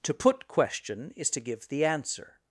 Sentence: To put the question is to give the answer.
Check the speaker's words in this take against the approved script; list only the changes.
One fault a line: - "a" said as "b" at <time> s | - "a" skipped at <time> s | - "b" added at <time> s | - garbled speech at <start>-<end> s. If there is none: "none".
- "the" skipped at 0.5 s